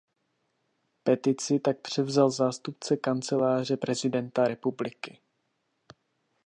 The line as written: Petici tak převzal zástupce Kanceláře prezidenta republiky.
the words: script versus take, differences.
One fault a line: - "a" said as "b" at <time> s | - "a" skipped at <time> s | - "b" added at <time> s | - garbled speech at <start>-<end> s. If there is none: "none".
none